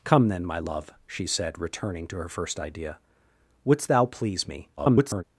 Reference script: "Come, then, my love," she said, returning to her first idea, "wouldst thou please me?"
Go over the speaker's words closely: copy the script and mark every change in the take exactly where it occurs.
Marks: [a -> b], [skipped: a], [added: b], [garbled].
"Come, then, my love," she said, returning to her first idea, "wouldst thou please me?" [garbled]